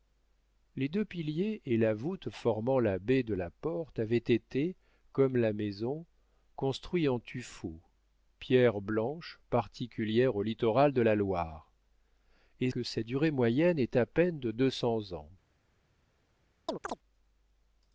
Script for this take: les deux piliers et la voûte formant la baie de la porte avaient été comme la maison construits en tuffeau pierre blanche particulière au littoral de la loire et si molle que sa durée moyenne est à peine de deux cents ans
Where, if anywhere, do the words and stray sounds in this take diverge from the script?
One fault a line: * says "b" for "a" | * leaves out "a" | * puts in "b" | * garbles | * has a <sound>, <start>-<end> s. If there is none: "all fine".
* leaves out "si molle"
* has a chirp, 16.7-17.0 s